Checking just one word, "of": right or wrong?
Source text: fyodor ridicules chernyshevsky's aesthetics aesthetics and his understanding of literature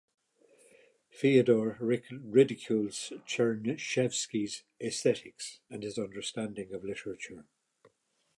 right